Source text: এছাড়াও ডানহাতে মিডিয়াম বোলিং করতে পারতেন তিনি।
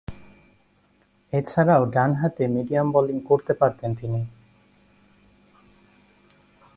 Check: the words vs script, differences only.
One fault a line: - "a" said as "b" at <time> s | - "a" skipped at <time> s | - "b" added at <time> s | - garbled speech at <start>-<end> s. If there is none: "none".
none